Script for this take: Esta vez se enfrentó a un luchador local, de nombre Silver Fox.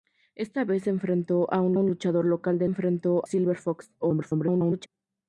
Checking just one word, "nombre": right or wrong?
wrong